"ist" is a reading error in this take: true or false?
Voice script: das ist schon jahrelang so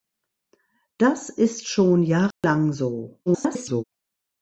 false